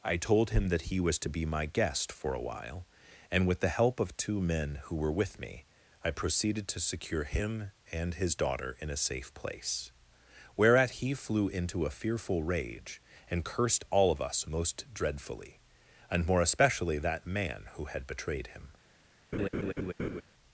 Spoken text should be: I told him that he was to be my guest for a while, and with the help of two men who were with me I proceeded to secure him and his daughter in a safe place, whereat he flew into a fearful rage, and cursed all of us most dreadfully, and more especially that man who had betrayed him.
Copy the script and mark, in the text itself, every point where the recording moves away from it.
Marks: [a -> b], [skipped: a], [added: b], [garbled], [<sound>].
I told him that he was to be my guest for a while, and with the help of two men who were with me I proceeded to secure him and his daughter in a safe place, whereat he flew into a fearful rage, and cursed all of us most dreadfully, and more especially that man who had betrayed him. [laugh]